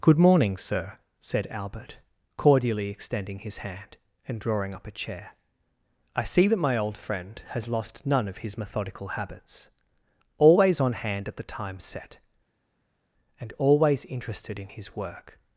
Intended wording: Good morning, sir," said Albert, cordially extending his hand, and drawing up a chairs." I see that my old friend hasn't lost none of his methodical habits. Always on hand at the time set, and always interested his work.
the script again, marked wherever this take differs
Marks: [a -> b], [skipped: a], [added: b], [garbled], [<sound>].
Good morning, sir," said Albert, cordially extending his hand, and drawing up a [chairs." -> chair] I see that my old friend [hasn't -> has] lost none of his methodical habits. Always on hand at the time set, and always interested [added: in] his work.